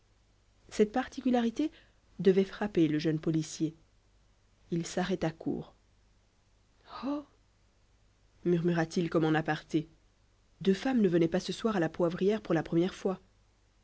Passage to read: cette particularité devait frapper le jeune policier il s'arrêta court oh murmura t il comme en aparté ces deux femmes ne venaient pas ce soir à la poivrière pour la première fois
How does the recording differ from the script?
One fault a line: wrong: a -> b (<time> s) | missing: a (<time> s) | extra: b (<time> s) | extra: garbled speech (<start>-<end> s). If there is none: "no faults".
missing: ces (9.9 s)